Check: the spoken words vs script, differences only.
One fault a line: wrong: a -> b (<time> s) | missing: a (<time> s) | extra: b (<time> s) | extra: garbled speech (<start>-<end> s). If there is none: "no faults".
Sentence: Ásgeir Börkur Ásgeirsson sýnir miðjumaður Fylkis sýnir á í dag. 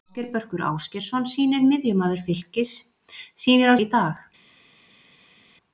no faults